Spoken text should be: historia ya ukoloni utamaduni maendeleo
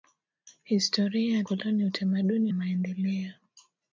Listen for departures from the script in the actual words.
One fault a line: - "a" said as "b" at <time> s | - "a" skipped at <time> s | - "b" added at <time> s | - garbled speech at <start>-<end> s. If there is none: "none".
none